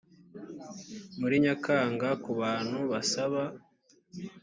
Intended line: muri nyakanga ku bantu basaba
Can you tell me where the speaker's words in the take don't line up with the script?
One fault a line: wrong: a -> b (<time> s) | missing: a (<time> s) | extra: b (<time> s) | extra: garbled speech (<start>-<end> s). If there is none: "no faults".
no faults